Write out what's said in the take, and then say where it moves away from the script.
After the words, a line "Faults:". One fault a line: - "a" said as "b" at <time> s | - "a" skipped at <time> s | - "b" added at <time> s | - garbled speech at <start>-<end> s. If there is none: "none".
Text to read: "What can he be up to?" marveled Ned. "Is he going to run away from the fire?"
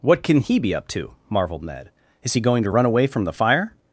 "What can he be up to?" marveled Ned. "Is he going to run away from the fire?"
Faults:
none